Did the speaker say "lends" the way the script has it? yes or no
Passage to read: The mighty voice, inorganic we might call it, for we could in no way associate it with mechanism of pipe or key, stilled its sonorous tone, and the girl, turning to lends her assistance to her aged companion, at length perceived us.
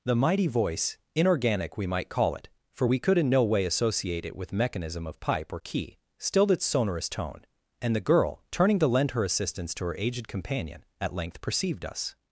no